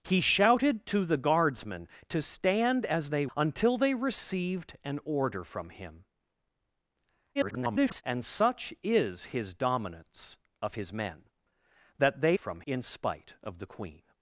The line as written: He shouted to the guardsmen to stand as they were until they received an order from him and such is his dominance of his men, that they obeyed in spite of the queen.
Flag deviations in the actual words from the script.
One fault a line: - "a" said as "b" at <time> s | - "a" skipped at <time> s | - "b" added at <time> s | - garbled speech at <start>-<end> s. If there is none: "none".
- "were" skipped at 3.3 s
- garbled speech at 7.3-8.0 s
- "obeyed" said as "from" at 12.3 s